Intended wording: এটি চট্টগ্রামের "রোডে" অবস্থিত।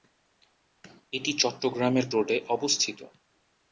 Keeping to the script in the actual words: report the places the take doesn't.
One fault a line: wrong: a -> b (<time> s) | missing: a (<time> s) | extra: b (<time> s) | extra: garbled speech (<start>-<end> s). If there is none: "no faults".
no faults